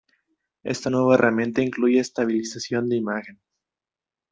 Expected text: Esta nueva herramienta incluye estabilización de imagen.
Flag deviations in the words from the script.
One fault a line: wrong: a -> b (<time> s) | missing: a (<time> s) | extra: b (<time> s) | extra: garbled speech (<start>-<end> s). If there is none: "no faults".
no faults